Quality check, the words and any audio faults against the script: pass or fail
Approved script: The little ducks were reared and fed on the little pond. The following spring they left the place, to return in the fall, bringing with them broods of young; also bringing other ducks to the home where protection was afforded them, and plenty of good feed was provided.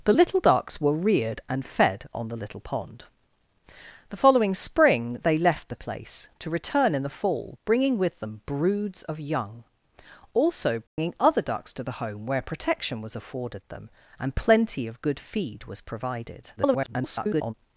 fail